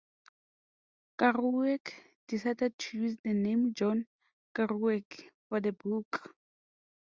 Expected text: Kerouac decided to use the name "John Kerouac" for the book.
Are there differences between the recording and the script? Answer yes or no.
no